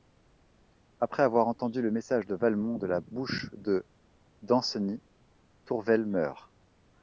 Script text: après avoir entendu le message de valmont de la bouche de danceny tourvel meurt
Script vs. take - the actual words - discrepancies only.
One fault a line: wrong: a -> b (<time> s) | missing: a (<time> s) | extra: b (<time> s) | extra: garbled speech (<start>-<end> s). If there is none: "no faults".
no faults